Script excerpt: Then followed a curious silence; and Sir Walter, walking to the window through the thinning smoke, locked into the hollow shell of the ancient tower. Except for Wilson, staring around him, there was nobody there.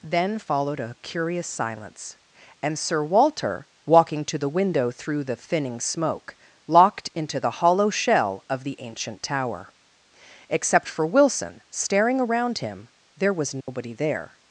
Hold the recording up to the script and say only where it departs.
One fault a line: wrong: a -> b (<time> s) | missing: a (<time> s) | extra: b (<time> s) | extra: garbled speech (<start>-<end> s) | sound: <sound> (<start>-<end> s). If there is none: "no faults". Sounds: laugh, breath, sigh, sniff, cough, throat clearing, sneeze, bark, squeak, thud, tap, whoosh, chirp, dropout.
sound: dropout (13.6-13.7 s)